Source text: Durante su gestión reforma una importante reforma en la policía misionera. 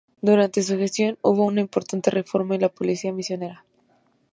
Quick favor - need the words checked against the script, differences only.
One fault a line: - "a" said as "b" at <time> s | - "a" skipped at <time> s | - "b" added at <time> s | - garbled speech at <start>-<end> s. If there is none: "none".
- "reforma" said as "hubo" at 1.2 s